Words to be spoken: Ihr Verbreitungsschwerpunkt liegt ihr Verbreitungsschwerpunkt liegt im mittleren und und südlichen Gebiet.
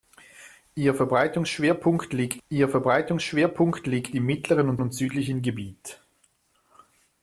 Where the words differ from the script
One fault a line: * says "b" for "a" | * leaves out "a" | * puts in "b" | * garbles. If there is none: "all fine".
all fine